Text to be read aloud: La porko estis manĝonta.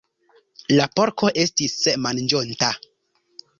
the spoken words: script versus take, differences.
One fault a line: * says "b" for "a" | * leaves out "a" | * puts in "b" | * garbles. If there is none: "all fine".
all fine